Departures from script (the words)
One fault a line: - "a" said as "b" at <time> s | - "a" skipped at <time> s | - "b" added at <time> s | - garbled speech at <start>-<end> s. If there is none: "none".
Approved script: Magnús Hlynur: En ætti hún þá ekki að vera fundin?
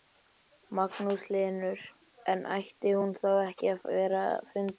none